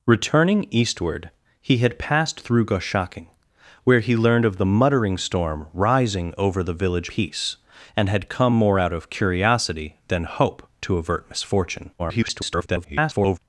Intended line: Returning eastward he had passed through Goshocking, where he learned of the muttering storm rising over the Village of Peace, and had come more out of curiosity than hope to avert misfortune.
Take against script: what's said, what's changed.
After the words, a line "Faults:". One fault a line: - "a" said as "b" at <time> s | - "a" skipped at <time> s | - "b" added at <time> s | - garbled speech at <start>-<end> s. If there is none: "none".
Returning eastward he had passed through Goshocking, where he learned of the muttering storm rising over the Village Peace, and had come more out of curiosity than hope to avert misfortune. [garbled]
Faults:
- "of" skipped at 7.1 s
- garbled speech at 12.0-13.4 s